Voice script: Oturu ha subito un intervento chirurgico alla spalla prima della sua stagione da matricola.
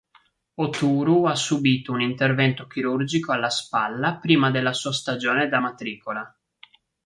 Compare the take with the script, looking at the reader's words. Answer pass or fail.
pass